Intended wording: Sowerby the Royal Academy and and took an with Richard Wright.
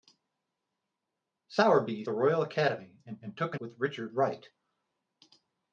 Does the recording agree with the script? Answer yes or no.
yes